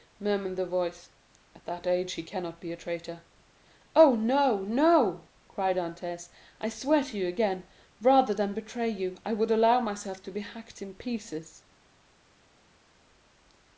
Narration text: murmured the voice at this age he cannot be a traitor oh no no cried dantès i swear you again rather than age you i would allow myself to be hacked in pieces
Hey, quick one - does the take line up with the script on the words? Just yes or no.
no